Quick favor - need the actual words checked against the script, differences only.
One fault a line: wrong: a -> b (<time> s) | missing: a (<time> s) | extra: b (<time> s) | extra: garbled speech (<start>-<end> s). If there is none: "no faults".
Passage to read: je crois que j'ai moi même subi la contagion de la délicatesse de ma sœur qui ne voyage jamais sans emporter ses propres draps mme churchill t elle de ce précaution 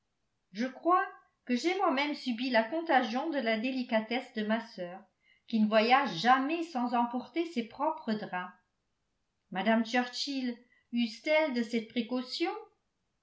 extra: use (10.9 s)
wrong: ce -> cette (11.6 s)